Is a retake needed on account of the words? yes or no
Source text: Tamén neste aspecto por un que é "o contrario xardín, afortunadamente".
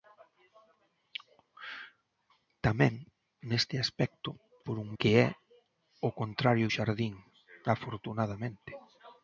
no